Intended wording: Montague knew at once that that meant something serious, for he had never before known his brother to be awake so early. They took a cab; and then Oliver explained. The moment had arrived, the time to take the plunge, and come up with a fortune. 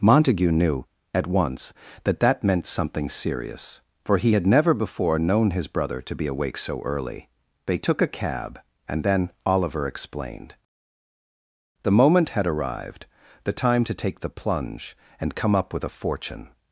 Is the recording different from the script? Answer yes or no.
no